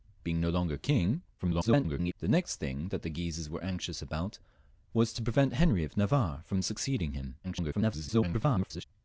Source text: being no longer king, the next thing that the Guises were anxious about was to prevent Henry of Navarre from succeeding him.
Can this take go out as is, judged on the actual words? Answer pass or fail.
fail